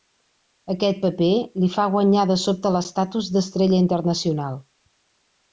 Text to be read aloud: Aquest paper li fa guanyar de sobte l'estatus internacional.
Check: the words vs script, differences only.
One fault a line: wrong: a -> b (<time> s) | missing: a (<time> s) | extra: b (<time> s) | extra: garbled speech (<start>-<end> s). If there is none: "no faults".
extra: d'estrella (3.4 s)